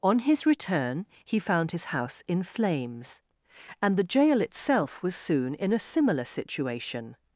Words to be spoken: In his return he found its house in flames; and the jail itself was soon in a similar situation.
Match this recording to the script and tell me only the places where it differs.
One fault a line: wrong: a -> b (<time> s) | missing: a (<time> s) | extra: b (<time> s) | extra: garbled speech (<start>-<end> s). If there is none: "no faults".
wrong: In -> On (0.0 s)
wrong: its -> his (1.7 s)